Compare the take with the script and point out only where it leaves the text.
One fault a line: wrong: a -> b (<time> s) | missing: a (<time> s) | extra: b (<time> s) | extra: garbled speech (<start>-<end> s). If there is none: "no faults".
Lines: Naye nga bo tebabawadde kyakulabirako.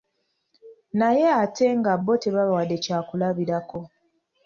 extra: ate (1.4 s)